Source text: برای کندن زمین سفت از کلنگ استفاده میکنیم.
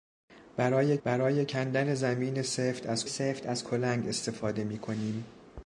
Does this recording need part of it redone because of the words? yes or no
yes